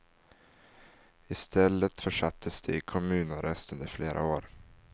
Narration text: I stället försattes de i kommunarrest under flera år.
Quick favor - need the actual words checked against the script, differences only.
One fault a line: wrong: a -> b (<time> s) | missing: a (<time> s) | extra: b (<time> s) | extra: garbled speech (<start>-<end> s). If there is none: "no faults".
no faults